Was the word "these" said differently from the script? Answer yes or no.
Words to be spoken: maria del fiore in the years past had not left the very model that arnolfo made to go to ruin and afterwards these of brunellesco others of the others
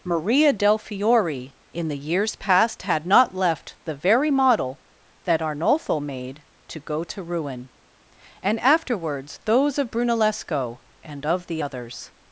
yes